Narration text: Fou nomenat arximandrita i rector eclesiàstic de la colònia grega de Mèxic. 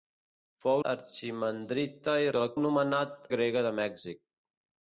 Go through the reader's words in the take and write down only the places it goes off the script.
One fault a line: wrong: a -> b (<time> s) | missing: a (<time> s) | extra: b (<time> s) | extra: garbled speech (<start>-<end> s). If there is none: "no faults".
missing: nomenat (0.8 s)
missing: rector eclesiàstic (2.3 s)
wrong: colònia -> nomenat (2.7 s)